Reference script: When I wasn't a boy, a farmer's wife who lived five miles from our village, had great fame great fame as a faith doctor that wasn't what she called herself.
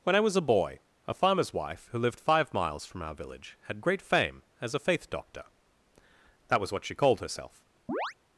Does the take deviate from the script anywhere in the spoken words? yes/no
yes